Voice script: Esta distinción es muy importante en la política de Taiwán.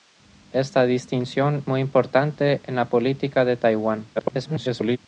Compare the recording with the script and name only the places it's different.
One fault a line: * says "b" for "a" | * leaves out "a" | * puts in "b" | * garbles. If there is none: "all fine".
* leaves out "es"
* garbles